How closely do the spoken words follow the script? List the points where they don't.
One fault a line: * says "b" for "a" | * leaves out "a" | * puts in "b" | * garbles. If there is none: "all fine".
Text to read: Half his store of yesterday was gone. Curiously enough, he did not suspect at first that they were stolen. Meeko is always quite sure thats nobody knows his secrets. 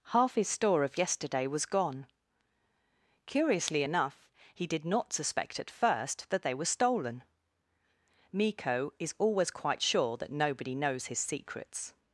* says "that" for "thats"